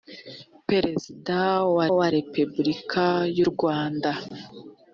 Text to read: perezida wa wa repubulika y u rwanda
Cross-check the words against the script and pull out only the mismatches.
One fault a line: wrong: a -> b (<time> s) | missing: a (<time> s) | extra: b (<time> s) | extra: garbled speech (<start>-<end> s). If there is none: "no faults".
no faults